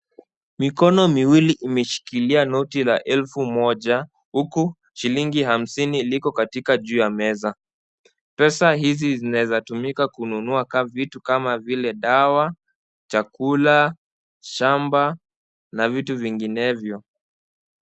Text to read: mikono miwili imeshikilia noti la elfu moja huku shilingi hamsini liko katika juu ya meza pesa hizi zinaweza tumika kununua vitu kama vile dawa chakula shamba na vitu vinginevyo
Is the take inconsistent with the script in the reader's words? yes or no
no